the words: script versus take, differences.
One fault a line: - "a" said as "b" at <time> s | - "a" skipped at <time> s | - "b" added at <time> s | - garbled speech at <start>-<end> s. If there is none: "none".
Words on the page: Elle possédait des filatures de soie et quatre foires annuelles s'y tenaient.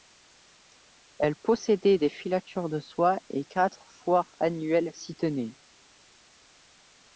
none